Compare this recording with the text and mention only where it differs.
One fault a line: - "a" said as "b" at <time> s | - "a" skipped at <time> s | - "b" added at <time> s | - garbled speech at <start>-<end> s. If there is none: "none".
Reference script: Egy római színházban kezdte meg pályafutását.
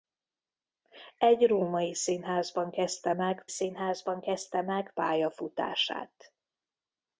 - "színházban kezdte meg" added at 3.5 s